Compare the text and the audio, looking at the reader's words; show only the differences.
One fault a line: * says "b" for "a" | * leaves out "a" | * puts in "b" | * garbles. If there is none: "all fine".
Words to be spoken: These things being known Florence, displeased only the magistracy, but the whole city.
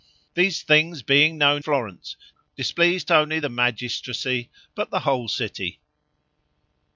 all fine